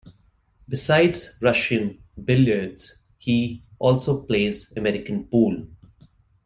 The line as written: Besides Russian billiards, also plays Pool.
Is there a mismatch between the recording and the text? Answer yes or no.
yes